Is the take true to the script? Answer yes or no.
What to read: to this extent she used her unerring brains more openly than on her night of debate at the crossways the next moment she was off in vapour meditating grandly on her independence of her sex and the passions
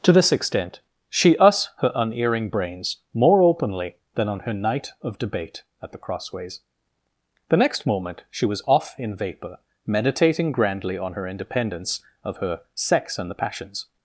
no